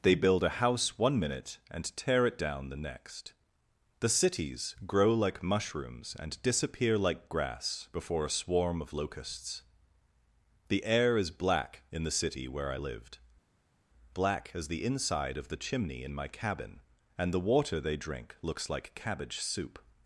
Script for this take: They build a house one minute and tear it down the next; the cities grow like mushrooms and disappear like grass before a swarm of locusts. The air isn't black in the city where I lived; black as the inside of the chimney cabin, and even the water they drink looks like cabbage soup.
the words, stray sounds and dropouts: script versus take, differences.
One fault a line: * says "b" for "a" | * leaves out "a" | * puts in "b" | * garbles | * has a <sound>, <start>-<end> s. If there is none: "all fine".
* says "is" for "isn't"
* puts in "in my"
* leaves out "even"